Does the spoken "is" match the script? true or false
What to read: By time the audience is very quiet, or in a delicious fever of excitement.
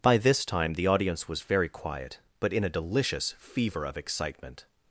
false